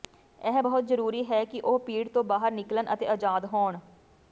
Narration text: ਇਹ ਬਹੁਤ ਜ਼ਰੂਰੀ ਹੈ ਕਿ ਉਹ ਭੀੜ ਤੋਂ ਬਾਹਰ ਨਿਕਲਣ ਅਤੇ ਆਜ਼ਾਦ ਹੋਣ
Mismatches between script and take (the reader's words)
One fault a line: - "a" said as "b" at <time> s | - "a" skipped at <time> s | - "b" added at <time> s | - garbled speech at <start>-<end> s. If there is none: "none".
none